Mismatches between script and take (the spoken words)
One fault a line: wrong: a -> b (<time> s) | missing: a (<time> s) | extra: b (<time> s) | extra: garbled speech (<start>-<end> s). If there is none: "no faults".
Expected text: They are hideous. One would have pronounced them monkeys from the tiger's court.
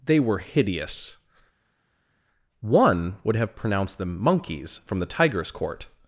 wrong: are -> were (0.2 s)